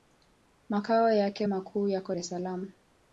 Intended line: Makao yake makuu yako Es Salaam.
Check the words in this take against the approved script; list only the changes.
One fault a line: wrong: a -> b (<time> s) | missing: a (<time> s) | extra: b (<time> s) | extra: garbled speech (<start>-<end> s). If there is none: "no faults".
no faults